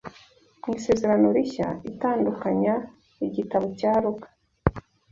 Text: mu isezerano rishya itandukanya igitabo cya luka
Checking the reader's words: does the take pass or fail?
pass